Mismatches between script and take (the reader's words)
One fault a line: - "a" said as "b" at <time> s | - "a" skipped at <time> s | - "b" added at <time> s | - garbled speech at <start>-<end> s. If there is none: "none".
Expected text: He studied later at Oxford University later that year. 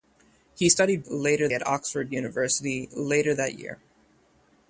none